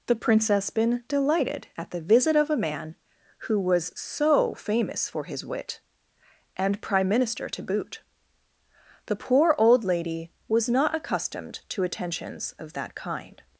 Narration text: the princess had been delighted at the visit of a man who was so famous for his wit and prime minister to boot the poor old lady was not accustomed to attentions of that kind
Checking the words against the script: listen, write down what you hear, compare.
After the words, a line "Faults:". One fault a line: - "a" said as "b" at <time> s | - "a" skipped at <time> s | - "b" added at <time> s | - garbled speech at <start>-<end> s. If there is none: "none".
the princess been delighted at the visit of a man who was so famous for his wit and prime minister to boot the poor old lady was not accustomed to attentions of that kind
Faults:
- "had" skipped at 0.7 s